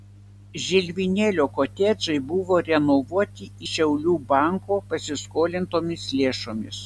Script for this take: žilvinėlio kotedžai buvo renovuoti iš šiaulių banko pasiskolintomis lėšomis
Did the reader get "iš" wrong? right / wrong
wrong